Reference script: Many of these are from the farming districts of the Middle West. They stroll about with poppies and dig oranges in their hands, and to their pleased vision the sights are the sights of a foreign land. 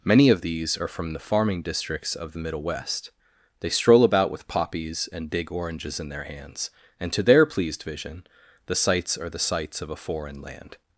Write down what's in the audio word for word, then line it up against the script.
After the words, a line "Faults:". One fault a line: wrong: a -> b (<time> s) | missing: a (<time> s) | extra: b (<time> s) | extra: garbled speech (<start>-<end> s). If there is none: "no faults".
Many of these are from the farming districts of the Middle West. They stroll about with poppies and dig oranges in their hands, and to their pleased vision the sights are the sights of a foreign land.
Faults:
no faults